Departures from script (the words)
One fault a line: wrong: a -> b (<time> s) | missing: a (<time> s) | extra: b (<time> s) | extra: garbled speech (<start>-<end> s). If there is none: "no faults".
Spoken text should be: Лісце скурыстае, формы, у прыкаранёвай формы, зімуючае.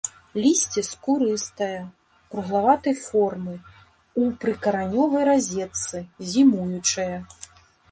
extra: круглаватай (2.3 s)
wrong: формы -> разетцы (5.3 s)